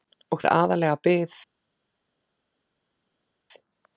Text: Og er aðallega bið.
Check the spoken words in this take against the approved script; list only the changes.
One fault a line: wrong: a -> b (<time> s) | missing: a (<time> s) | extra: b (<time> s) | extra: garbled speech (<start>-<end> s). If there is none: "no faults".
no faults